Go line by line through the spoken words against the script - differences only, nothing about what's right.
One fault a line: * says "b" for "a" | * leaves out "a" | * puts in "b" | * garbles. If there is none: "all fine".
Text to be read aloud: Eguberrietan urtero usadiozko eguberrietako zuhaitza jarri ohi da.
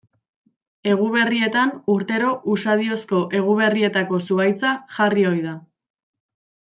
all fine